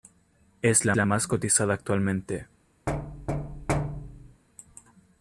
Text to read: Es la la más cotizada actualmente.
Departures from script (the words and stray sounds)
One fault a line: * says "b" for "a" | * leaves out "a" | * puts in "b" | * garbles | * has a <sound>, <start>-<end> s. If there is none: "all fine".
* has a thud, 2.9-4.4 s